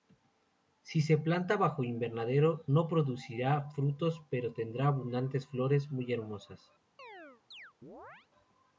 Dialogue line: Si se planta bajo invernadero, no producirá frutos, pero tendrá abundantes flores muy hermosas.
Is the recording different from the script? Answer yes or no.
no